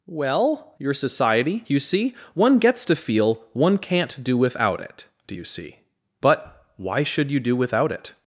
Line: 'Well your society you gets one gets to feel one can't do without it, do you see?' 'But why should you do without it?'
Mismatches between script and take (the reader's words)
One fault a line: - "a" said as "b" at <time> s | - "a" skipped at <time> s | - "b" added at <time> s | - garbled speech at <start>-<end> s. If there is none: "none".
- "gets" said as "see" at 1.8 s